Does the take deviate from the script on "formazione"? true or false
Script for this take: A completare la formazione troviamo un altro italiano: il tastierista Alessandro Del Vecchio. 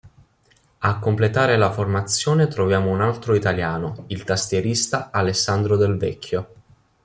false